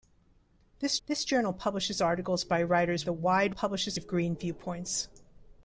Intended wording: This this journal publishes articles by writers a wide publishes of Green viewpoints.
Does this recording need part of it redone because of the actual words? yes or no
no